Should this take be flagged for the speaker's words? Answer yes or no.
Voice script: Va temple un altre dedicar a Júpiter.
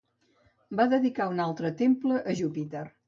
yes